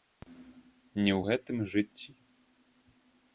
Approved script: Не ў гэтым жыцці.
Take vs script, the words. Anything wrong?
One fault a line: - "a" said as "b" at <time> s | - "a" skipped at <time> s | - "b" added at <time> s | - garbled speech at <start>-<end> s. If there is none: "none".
none